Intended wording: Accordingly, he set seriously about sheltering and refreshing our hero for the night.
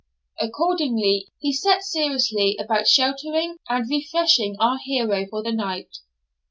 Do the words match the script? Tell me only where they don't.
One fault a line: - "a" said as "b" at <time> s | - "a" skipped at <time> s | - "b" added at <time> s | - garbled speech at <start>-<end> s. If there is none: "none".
none